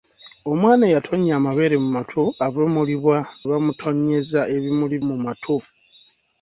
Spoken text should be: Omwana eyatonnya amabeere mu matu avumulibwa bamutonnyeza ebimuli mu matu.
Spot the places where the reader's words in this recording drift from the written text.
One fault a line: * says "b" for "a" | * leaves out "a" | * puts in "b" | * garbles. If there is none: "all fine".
all fine